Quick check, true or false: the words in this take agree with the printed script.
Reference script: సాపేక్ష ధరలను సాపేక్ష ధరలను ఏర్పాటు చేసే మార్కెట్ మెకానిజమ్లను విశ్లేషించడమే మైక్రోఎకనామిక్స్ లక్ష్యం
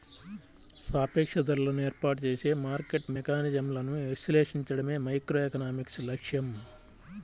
false